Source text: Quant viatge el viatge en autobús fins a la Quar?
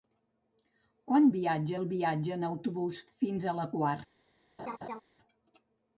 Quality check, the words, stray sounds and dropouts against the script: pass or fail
fail